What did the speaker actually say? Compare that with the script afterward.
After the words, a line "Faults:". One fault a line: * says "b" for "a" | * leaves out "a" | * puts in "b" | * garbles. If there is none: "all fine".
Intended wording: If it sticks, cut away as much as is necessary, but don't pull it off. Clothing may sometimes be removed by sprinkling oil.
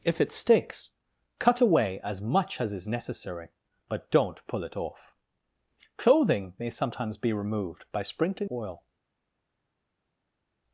If it sticks, cut away as much as is necessary, but don't pull it off. Clothing may sometimes be removed by sprinkling oil.
Faults:
all fine